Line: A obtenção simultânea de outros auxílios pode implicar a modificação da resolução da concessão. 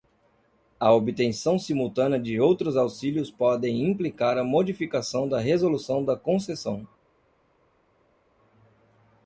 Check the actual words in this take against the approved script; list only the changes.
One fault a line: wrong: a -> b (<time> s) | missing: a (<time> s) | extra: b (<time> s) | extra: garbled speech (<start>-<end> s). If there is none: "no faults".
no faults